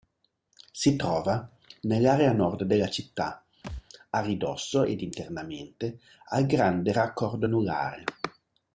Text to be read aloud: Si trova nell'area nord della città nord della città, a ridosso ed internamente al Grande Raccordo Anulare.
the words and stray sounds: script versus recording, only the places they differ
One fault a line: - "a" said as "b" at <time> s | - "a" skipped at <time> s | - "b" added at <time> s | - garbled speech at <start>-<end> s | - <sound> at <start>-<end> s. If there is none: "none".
- "nord della città" skipped at 3.4 s
- thud at 3.6-3.8 s